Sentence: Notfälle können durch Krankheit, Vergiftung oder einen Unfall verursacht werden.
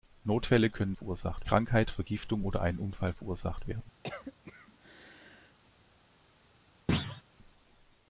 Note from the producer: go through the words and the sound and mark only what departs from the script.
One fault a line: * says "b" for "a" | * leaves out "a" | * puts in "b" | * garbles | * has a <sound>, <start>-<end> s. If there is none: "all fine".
* says "verursacht" for "durch"
* has a cough, 4.0-5.6 s
* has a thud, 6.9-7.2 s